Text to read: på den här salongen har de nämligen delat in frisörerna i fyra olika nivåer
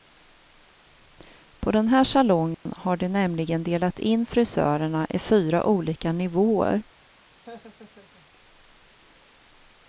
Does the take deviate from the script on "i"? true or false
false